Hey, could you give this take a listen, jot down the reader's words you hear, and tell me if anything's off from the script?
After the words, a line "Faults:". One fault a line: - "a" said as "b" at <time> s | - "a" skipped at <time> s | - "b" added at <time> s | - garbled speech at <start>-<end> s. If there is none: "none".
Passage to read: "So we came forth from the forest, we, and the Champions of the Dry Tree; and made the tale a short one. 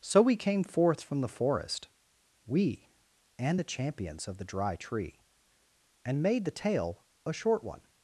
"So we came forth from the forest, we, and the Champions of the Dry Tree; and made the tale a short one.
Faults:
none